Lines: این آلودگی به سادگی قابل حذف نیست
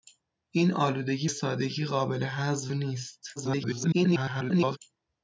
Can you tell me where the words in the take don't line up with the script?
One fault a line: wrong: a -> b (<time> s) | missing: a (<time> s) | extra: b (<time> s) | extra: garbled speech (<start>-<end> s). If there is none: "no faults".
missing: به (1.3 s)
extra: garbled speech (3.4-4.8 s)